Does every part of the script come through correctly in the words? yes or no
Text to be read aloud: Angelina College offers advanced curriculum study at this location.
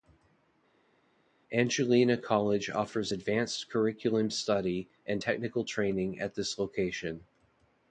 no